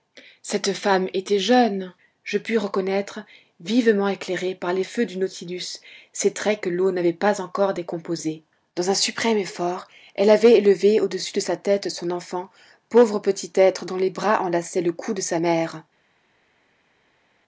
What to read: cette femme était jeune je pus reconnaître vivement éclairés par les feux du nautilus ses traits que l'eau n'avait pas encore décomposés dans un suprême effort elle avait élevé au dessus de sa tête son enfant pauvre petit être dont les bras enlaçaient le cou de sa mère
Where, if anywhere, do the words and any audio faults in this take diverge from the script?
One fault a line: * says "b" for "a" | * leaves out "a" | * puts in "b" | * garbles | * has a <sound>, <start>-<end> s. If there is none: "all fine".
all fine